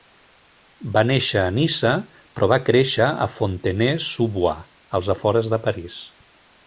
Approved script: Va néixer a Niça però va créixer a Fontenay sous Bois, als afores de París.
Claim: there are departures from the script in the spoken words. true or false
false